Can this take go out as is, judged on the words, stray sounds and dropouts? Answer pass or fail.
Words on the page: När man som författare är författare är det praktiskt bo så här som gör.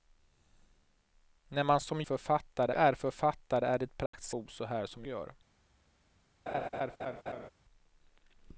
fail